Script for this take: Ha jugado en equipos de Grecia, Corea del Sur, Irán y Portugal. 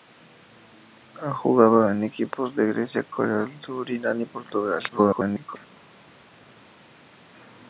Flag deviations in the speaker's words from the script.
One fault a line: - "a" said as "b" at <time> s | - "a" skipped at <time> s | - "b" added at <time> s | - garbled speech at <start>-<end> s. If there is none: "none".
- garbled speech at 4.9-5.6 s